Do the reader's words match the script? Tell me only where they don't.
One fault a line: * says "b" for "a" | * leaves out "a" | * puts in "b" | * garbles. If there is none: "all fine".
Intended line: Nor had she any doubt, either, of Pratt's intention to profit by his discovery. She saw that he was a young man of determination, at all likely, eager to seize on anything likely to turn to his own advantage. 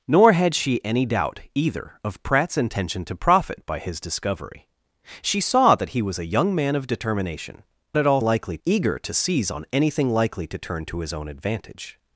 all fine